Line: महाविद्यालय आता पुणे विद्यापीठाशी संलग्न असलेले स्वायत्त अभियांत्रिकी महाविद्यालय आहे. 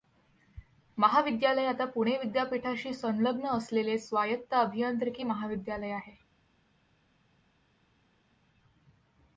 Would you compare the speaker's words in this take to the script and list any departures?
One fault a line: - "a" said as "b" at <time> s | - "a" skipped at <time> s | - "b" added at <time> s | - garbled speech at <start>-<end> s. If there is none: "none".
none